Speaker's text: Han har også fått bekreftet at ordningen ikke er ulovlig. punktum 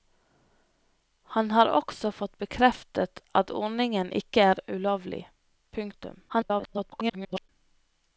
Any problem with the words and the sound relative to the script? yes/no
yes